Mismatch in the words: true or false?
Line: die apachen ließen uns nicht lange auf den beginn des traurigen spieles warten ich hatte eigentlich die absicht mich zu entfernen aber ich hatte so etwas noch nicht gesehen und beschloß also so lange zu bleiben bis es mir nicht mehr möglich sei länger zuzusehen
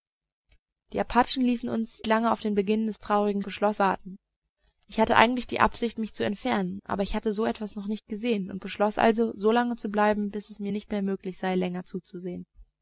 true